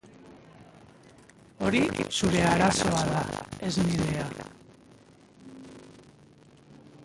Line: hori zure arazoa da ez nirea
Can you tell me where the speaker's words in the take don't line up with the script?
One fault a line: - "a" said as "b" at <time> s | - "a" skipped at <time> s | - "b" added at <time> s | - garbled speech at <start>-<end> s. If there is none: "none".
none